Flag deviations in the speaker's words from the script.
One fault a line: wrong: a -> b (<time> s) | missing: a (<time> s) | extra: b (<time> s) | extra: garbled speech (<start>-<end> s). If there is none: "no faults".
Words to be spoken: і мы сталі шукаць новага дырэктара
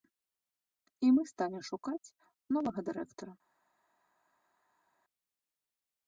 no faults